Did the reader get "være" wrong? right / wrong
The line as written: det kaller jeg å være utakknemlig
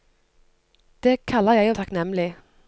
wrong